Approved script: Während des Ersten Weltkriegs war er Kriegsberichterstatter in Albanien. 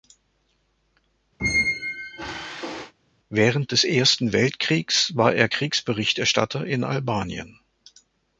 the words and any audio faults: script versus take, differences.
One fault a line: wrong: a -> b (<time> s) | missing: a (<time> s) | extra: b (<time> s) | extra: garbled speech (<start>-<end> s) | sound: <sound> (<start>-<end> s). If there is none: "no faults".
sound: squeak (1.4-2.9 s)